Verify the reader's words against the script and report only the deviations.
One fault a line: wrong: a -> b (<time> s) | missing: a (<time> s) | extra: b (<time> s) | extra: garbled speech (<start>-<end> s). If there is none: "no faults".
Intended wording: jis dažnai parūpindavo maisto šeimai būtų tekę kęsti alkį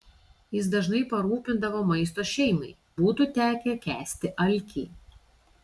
no faults